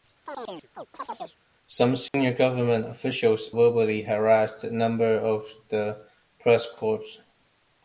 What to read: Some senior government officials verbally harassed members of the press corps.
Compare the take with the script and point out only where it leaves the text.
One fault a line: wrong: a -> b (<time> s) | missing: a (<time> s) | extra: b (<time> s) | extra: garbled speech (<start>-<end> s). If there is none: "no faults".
no faults